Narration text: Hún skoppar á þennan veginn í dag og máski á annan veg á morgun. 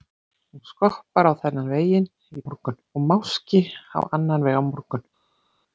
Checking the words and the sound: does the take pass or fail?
fail